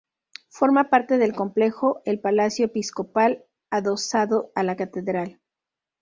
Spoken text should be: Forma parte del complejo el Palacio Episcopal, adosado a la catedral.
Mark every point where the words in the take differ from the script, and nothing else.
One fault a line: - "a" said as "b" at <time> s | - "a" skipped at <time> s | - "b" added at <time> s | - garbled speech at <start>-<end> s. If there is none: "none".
none